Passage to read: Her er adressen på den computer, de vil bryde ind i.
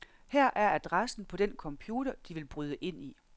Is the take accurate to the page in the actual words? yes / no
yes